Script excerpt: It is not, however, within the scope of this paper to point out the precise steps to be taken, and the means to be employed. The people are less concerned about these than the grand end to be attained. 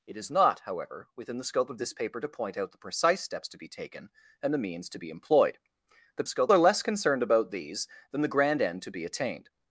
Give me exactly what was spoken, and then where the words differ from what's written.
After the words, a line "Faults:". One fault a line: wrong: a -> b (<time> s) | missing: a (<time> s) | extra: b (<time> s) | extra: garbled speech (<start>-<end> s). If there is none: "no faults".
It is not, however, within the scope of this paper to point out the precise steps to be taken, and the means to be employed. The scope are less concerned about these than the grand end to be attained.
Faults:
wrong: people -> scope (6.3 s)